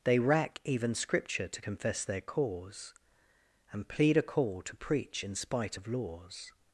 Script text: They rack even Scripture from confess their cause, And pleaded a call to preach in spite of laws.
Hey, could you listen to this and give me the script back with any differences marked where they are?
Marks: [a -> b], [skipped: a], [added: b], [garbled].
They rack even Scripture [from -> to] confess their cause, And [pleaded -> plead] a call to preach in spite of laws.